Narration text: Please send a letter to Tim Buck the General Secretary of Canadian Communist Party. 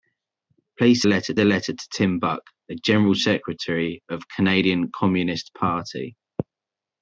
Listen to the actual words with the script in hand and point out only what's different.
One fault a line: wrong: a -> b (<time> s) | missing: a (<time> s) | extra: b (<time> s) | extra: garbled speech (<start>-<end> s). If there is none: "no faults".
wrong: send -> letter (1.0 s)